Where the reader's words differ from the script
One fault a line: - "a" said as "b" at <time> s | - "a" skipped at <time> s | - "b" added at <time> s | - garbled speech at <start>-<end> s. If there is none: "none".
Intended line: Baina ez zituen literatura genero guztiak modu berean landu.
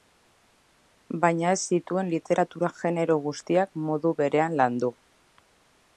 none